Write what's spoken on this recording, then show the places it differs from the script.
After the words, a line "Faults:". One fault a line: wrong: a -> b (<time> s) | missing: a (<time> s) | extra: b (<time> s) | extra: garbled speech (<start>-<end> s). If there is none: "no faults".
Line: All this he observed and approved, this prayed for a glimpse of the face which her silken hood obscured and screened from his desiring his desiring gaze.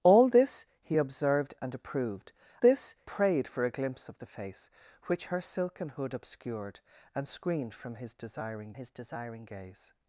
All this he observed and approved, this prayed for a glimpse of the face which her silken hood obscured and screened from his desiring his desiring gaze.
Faults:
no faults